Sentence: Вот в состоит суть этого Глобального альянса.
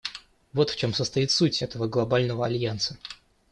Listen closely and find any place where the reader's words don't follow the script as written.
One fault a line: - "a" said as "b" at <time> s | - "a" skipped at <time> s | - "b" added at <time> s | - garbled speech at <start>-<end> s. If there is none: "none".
- "чем" added at 0.8 s